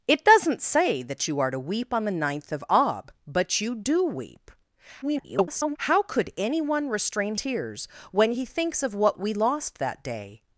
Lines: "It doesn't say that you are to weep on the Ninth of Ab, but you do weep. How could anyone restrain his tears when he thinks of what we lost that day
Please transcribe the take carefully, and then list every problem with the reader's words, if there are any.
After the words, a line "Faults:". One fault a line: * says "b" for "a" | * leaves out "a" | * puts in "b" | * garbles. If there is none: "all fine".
"It doesn't say that you are to weep on the Ninth of Ab, but you do weep. [garbled] How could anyone restrain tears when he thinks of what we lost that day
Faults:
* garbles
* leaves out "his"